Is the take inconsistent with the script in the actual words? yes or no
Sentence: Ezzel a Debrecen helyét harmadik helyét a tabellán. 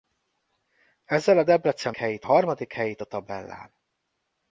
no